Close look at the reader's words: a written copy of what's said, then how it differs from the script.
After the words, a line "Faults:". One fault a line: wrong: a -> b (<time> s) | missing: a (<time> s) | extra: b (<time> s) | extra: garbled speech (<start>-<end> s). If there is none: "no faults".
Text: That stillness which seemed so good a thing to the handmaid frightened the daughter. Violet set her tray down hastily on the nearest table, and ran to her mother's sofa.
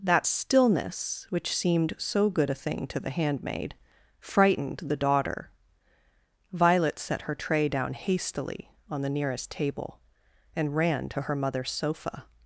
That stillness which seemed so good a thing to the handmaid frightened the daughter. Violet set her tray down hastily on the nearest table, and ran to her mother's sofa.
Faults:
no faults